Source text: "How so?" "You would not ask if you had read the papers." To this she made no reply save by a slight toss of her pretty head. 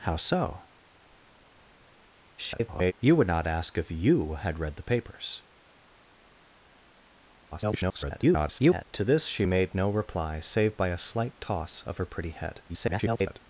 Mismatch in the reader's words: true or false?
true